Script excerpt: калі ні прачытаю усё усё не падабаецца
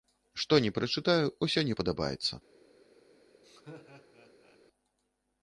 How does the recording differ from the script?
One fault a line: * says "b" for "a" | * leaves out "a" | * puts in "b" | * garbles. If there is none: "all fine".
* says "што" for "калі"
* leaves out "усё"